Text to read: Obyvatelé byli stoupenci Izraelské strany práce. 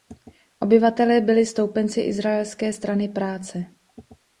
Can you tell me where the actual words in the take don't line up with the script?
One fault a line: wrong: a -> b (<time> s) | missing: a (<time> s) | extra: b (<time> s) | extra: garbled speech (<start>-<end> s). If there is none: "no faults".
no faults